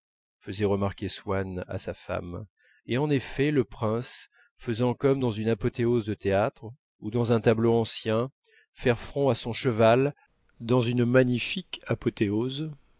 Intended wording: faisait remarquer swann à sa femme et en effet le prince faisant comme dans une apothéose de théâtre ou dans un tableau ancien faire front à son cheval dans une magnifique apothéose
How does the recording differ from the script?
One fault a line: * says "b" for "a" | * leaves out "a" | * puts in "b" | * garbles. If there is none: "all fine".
all fine